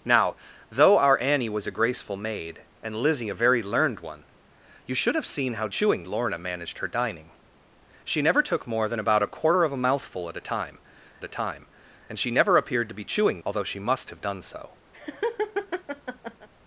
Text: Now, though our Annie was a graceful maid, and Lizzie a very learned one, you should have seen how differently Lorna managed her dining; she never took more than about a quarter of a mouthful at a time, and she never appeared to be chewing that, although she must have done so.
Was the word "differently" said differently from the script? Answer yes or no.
yes